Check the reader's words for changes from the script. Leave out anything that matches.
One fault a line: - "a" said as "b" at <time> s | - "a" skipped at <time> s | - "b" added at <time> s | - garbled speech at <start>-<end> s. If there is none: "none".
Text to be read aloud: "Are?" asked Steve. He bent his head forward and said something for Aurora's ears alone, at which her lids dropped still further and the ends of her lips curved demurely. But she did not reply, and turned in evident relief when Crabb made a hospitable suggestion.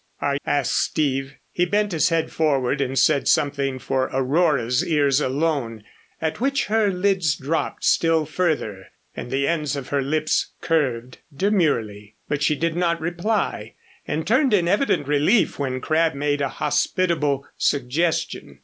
none